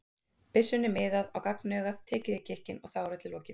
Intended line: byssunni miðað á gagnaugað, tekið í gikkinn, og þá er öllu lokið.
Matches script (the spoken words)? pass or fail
pass